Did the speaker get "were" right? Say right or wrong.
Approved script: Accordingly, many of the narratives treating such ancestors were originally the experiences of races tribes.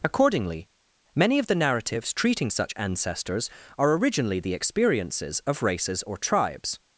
wrong